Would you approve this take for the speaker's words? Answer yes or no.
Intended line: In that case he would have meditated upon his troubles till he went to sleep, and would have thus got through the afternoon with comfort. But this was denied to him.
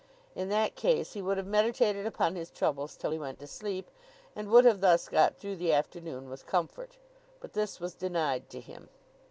yes